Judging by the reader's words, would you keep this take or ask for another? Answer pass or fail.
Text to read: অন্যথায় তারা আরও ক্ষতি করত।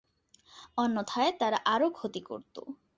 pass